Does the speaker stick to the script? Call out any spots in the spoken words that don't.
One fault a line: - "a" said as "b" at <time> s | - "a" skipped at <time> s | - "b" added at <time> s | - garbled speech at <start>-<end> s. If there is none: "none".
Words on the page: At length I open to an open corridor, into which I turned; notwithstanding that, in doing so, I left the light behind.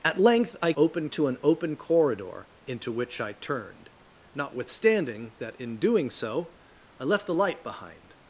none